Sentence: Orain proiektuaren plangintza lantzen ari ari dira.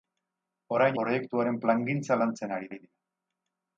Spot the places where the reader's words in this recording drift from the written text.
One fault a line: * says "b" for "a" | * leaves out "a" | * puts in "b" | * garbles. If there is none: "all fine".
all fine